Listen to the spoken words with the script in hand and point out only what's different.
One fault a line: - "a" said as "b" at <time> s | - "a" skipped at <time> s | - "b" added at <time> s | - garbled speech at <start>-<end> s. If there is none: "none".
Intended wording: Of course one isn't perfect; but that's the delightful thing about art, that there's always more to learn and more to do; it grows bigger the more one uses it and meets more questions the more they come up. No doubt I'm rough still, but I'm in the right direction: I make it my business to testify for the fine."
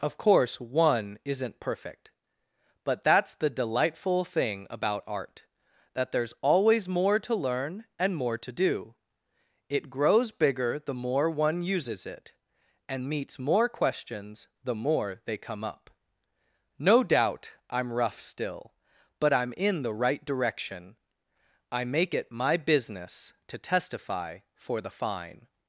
none